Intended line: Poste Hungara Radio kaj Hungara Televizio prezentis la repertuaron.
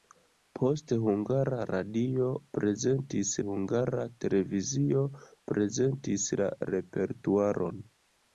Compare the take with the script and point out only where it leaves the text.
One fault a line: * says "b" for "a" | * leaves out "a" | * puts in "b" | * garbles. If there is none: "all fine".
* says "prezentis" for "kaj"